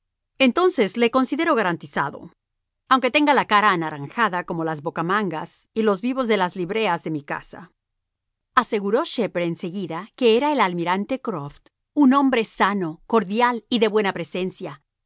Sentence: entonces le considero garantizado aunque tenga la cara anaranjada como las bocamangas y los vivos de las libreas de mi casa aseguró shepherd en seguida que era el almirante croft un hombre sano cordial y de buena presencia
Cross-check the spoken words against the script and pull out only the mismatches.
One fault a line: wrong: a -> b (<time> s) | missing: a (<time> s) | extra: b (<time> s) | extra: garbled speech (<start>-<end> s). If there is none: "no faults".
no faults